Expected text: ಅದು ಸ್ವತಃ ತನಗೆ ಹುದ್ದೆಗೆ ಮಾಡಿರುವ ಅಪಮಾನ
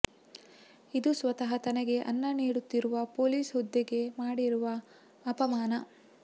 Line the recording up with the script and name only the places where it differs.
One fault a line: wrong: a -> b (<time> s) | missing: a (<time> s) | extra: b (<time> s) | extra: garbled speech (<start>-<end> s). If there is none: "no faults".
wrong: ಅದು -> ಇದು (0.9 s)
extra: ಅನ್ನ ನೀಡುತ್ತಿರುವ ಪೊಲೀಸ್ (2.1 s)